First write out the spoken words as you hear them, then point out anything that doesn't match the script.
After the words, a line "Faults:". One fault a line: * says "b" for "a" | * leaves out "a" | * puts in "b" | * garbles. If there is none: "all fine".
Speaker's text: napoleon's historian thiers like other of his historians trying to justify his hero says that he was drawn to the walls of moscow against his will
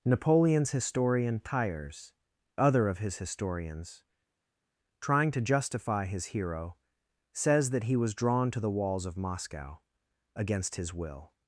napoleon's historian thiers other of his historians trying to justify his hero says that he was drawn to the walls of moscow against his will
Faults:
* leaves out "like"